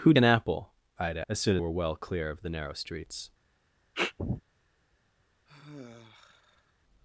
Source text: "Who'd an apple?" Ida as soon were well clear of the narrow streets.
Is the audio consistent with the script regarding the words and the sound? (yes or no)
no